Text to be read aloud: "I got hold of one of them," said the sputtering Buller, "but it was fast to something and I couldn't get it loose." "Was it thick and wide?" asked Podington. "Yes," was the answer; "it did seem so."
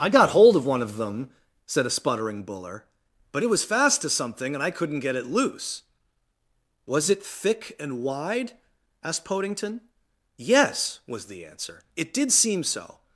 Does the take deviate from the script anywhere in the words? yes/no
yes